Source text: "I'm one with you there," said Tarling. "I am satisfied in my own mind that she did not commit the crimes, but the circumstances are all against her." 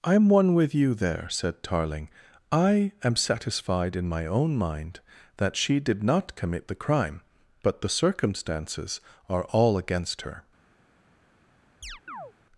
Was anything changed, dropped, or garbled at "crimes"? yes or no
yes